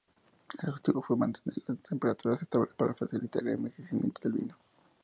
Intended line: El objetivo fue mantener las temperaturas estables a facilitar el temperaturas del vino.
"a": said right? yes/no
no